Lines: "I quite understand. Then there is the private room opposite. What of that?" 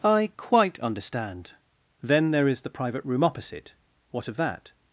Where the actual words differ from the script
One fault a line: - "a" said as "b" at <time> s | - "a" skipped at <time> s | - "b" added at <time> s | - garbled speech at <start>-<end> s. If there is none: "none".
none